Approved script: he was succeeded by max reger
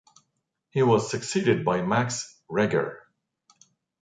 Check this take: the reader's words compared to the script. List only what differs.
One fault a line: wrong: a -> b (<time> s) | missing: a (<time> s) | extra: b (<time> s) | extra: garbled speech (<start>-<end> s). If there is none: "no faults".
no faults